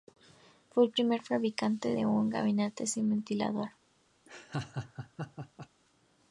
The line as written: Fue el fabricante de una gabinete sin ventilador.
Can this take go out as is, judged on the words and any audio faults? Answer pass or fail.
fail